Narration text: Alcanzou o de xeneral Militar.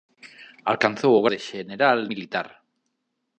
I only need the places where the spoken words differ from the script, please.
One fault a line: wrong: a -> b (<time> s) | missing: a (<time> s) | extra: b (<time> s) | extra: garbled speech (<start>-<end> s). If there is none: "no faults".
no faults